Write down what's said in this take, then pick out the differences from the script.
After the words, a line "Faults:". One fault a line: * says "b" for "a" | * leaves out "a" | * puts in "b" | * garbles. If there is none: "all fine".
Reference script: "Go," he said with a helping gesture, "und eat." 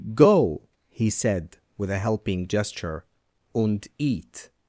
"Go," he said with a helping gesture, "und eat."
Faults:
all fine